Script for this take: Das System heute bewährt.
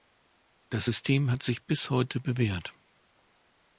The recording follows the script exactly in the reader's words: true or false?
false